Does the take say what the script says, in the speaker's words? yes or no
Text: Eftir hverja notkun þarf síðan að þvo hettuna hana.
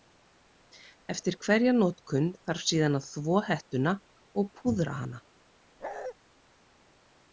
no